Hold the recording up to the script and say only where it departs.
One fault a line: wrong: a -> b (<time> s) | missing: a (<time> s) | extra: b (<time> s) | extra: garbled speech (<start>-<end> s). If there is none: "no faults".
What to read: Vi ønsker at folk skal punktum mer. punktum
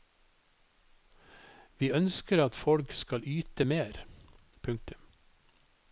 wrong: punktum -> yte (3.2 s)